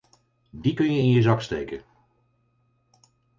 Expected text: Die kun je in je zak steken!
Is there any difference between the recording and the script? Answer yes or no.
no